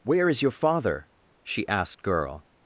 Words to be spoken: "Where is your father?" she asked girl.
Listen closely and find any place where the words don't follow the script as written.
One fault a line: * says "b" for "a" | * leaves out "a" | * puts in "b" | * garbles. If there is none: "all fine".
all fine